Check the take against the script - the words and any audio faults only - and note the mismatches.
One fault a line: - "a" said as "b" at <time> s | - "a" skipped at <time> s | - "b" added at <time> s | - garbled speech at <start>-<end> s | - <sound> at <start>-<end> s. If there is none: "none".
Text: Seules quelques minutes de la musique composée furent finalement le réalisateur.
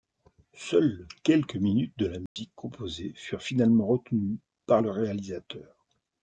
- dropout at 2.3-2.4 s
- "retenues par" added at 3.9 s